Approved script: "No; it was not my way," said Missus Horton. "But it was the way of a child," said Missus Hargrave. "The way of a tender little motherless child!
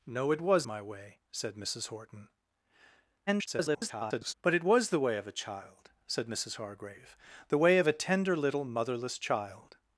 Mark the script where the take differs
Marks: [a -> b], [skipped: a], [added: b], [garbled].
"No; it was [skipped: not] my way," said Missus Horton. [garbled] "But it was the way of a child," said Missus Hargrave. "The way of a tender little motherless child!